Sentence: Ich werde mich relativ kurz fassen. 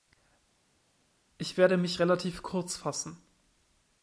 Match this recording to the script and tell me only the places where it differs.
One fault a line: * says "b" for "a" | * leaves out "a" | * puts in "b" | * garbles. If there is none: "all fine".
all fine